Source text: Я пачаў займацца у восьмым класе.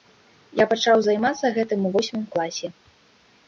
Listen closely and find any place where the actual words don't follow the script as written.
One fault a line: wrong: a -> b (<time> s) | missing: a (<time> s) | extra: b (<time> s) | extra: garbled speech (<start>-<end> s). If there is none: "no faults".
extra: гэтым (1.6 s)